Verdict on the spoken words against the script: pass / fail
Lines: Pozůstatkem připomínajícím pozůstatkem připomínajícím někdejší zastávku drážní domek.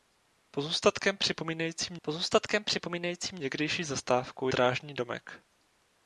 pass